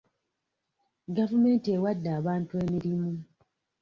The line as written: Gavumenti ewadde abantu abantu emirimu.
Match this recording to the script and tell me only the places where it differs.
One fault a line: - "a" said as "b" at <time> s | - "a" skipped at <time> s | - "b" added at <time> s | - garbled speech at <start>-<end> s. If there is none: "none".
- "abantu" skipped at 2.5 s